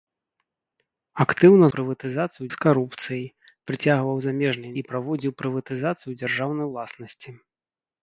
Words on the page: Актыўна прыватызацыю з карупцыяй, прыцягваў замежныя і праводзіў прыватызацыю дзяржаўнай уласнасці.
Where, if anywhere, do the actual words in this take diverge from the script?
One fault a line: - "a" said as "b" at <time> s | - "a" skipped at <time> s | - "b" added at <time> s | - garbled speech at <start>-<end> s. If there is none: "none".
none